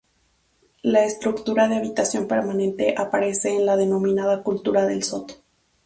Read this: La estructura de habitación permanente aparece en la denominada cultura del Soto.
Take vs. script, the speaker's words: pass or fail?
pass